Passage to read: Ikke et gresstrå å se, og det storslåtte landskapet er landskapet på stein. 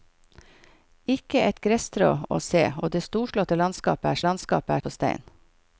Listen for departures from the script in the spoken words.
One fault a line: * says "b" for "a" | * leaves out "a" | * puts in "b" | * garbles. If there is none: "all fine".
all fine